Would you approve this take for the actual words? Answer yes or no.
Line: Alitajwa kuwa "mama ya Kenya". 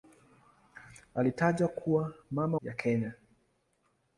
yes